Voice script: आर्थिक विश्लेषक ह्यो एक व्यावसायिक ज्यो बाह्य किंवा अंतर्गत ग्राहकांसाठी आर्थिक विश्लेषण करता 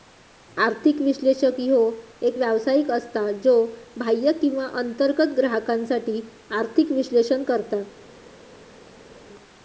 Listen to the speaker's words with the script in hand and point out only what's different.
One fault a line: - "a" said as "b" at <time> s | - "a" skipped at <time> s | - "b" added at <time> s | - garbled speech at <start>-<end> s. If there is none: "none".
- "असता" added at 2.9 s